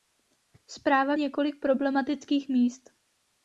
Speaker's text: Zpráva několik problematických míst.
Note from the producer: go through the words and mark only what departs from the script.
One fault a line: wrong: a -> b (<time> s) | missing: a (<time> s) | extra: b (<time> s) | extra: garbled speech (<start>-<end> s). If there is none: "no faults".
no faults